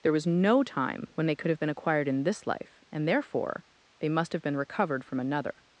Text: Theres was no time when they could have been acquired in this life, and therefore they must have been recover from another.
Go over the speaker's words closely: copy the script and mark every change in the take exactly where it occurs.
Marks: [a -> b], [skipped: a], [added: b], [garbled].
[Theres -> There] was no time when they could have been acquired in this life, and therefore they must have been [recover -> recovered] from another.